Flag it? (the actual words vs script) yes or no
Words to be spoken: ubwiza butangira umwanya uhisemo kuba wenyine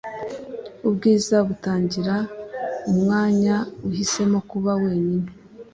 no